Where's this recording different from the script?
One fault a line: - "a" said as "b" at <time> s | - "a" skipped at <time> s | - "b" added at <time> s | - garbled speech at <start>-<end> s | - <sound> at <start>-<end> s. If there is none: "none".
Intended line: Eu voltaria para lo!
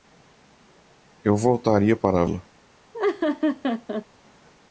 - laugh at 2.9-4.1 s